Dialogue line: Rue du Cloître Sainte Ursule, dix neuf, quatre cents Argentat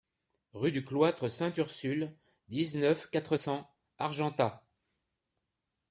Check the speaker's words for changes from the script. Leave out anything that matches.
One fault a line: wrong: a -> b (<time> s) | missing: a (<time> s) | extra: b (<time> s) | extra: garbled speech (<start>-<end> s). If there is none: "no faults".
no faults